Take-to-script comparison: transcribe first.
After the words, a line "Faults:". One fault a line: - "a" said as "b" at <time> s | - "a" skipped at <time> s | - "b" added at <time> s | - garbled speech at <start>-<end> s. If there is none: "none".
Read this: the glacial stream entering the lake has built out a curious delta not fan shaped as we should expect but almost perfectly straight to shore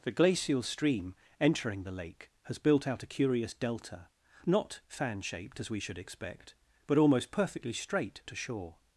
the glacial stream entering the lake has built out a curious delta not fan shaped as we should expect but almost perfectly straight to shore
Faults:
none